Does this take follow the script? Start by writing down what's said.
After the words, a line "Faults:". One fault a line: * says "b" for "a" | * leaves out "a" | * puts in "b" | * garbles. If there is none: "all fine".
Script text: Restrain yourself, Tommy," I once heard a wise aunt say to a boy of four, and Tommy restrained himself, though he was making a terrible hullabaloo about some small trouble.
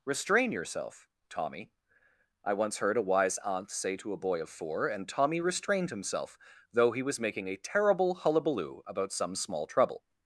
Restrain yourself, Tommy," I once heard a wise aunt say to a boy of four, and Tommy restrained himself, though he was making a terrible hullabaloo about some small trouble.
Faults:
all fine